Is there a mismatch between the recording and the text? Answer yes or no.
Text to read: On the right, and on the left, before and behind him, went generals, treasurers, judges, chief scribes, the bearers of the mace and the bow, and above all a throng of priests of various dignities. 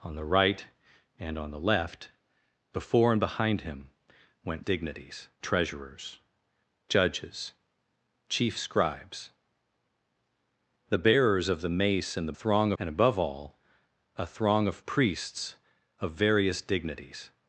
yes